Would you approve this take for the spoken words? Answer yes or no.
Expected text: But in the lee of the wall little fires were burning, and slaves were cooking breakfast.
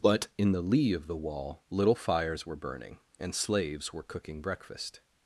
yes